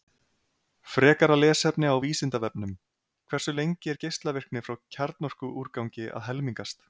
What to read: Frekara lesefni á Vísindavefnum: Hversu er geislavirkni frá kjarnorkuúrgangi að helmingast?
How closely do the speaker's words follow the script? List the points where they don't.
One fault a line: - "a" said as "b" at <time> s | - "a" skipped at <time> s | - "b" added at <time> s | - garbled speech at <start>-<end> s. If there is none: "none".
- "lengi" added at 3.6 s